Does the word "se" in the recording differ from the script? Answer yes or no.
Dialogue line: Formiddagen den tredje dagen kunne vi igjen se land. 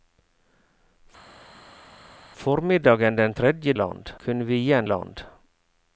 yes